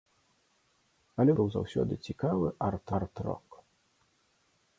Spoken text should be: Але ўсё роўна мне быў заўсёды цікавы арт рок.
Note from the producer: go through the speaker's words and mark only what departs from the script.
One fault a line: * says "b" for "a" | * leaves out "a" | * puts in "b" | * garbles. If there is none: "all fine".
* leaves out "ўсё роўна мне"
* puts in "арт"